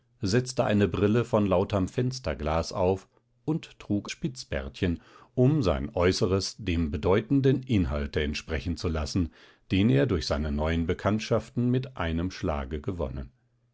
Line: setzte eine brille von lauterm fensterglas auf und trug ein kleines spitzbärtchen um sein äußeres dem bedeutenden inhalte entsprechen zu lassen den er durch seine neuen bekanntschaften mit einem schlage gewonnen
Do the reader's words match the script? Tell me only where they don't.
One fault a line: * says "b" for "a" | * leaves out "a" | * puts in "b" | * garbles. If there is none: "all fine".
* leaves out "ein kleines"